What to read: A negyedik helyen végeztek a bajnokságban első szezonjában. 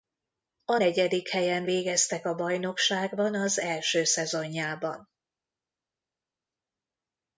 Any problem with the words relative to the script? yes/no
yes